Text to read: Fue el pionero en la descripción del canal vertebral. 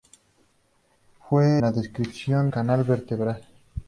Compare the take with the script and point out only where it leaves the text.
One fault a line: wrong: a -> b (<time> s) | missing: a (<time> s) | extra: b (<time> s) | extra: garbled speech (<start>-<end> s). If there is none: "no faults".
missing: el pionero en (1.6 s)
missing: del (2.5 s)